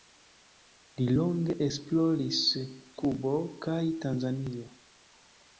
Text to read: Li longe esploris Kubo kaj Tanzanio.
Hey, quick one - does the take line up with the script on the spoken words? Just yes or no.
yes